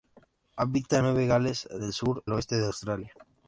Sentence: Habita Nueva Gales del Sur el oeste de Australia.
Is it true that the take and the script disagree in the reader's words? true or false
false